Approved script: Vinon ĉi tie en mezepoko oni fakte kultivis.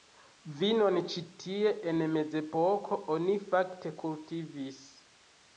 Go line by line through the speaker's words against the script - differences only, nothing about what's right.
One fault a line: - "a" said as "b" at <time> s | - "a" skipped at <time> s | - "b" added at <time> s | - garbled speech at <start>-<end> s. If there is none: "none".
none